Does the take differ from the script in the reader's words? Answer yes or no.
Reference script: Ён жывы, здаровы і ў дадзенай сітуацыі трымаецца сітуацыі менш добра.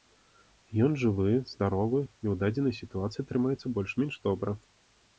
yes